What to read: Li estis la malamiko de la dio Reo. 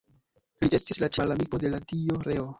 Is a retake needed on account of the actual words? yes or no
no